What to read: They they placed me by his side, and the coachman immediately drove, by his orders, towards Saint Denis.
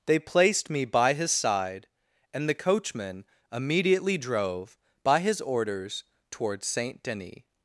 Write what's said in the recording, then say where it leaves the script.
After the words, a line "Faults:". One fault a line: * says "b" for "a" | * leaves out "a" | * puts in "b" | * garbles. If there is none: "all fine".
They placed me by his side, and the coachman immediately drove, by his orders, towards Saint Denis.
Faults:
* leaves out "they"